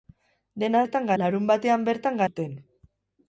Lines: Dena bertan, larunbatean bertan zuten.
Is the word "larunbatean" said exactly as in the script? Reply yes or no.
yes